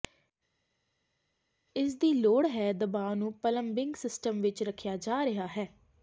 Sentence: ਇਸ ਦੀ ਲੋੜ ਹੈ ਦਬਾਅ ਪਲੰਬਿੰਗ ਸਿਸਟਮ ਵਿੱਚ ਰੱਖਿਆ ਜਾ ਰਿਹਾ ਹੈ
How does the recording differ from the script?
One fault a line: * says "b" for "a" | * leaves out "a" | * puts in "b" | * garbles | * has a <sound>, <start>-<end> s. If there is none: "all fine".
* puts in "ਨੂੰ"